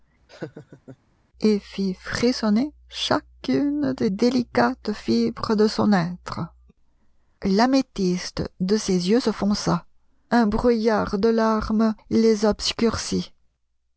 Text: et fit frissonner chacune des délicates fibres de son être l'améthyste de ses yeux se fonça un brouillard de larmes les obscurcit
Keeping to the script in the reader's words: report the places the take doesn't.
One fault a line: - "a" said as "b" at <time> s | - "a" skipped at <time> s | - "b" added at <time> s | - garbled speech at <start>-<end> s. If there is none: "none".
none